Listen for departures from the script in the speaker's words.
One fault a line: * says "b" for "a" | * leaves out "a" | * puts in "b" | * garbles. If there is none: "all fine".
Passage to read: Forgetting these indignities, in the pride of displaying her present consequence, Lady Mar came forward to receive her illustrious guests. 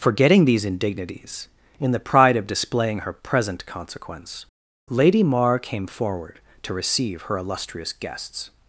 all fine